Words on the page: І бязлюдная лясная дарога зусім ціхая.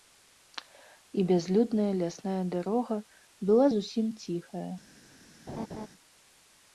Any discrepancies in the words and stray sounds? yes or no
yes